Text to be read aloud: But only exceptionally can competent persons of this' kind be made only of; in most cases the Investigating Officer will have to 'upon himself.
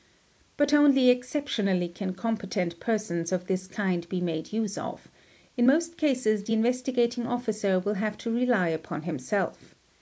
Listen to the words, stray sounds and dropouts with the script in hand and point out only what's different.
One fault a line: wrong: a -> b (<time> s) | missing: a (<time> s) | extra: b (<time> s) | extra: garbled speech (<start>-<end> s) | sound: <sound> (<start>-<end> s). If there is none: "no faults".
wrong: only -> use (4.5 s)
extra: rely (8.3 s)